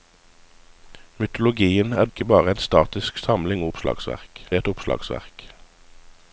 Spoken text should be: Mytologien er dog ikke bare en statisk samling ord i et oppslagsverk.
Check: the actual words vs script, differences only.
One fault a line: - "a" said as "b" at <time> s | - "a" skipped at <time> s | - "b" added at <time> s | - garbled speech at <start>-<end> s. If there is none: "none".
- "dog" skipped at 2.1 s
- "ord" said as "oppslagsverk" at 3.7 s